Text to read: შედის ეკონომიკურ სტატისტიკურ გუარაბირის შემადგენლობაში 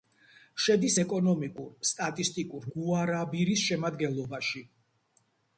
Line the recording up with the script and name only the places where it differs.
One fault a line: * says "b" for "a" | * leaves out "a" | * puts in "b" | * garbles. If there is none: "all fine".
all fine